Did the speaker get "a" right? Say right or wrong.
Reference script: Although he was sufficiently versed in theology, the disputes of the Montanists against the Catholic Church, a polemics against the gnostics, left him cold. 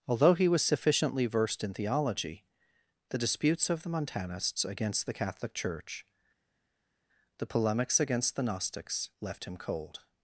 wrong